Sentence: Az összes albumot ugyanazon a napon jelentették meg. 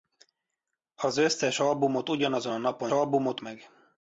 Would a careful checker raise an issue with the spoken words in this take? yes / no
yes